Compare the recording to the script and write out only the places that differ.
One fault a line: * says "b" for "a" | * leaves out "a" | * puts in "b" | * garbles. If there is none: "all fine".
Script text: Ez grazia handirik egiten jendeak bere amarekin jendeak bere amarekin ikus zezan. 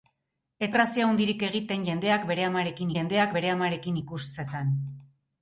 all fine